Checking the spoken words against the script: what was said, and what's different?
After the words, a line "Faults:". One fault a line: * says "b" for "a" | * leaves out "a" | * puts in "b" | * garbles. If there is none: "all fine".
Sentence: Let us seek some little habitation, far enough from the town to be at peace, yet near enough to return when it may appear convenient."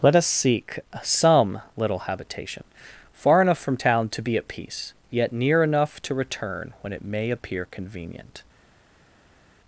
Let us seek some little habitation, far enough from town to be at peace, yet near enough to return when it may appear convenient."
Faults:
* leaves out "the"